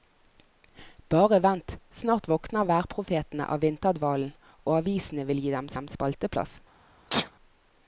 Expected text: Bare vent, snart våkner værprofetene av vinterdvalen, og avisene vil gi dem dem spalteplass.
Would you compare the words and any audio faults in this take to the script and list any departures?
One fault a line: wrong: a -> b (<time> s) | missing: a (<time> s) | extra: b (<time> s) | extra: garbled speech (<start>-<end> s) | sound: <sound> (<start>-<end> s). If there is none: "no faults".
sound: sneeze (7.1-7.3 s)